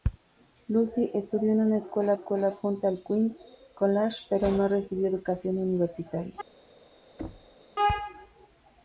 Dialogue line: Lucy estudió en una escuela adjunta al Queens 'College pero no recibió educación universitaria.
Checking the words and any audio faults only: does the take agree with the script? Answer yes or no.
no